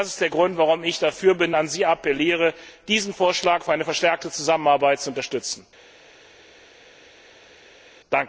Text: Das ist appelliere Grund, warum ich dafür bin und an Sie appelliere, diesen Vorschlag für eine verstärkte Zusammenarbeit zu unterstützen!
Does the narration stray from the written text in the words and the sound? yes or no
yes